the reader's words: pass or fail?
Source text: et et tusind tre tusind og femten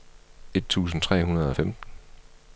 fail